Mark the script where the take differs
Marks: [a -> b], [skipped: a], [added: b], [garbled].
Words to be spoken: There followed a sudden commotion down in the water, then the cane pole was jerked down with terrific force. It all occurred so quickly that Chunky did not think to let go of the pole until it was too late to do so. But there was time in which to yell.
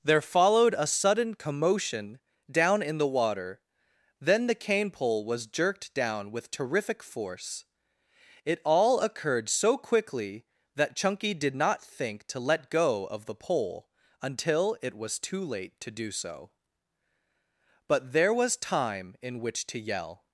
There followed a sudden commotion down in the water, then the cane pole was jerked down with terrific force. It all occurred so quickly that Chunky did not think to let go of the pole until it was too late to do so. But there was time in which to yell.